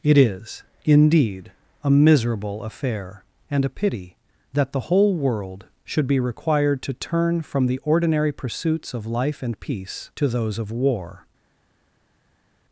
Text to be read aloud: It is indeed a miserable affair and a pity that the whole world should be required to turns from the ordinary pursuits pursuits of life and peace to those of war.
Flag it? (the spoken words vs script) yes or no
yes